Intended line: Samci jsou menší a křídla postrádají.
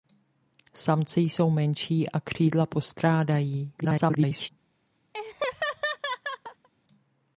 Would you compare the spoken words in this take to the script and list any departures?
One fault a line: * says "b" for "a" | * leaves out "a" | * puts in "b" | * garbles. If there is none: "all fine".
* garbles